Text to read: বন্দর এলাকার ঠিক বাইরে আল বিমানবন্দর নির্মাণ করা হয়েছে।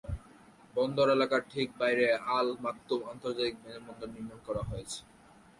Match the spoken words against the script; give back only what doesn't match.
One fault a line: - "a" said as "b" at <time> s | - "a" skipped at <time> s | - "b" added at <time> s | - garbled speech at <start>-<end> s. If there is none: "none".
- "মাকতুম আন্তর্জাতিক" added at 2.6 s